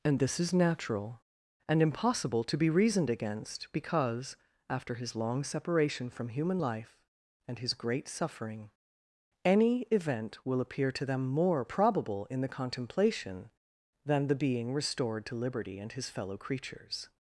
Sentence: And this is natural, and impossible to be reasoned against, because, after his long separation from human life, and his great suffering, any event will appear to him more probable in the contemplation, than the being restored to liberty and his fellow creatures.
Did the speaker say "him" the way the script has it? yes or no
no